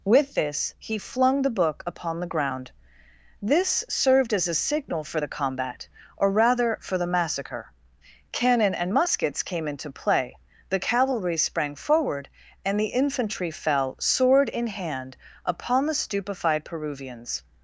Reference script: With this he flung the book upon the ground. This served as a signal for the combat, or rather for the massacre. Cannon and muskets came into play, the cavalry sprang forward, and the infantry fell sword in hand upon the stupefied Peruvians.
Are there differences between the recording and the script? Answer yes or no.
no